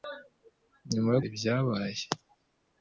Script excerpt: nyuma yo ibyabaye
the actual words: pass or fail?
pass